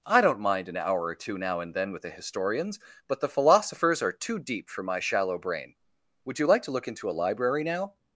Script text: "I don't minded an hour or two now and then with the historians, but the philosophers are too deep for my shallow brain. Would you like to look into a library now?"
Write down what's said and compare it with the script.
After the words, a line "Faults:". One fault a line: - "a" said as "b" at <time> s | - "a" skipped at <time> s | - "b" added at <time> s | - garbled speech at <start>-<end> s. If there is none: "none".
"I don't mind an hour or two now and then with the historians, but the philosophers are too deep for my shallow brain. Would you like to look into a library now?"
Faults:
- "minded" said as "mind" at 0.4 s